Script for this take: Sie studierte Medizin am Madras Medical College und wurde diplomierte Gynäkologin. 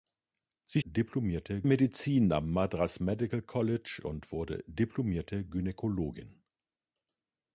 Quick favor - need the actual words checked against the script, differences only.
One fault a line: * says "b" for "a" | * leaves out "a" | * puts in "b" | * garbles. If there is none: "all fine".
* says "diplomierte" for "studierte"